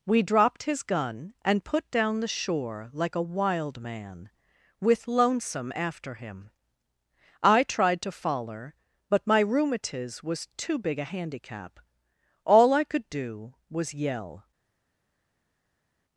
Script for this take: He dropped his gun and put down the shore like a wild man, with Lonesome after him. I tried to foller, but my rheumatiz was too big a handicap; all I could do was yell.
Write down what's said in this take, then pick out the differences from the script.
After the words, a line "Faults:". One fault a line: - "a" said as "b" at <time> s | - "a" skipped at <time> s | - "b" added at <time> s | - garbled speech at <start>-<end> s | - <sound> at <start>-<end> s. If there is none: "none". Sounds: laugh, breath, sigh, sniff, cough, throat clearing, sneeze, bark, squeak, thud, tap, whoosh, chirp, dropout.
We dropped his gun and put down the shore like a wild man, with Lonesome after him. I tried to foller, but my rheumatiz was too big a handicap; all I could do was yell.
Faults:
- "He" said as "We" at 0.1 s